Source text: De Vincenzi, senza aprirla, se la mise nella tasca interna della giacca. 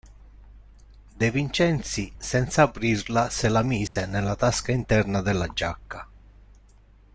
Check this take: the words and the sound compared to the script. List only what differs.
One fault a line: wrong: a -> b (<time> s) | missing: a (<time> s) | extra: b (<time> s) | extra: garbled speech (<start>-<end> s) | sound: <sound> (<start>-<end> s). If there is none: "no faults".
sound: dropout (3.9-4.0 s)